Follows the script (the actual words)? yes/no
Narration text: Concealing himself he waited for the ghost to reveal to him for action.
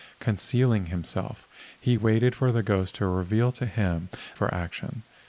yes